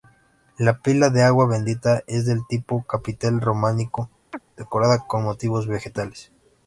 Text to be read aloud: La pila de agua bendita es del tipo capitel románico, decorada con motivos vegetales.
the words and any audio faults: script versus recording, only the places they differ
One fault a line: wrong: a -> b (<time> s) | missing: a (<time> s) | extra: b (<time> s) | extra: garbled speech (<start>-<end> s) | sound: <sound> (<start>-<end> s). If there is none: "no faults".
sound: chirp (4.3-4.4 s)